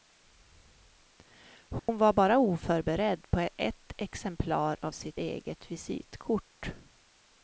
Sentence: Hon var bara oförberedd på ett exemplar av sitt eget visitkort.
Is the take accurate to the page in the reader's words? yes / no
yes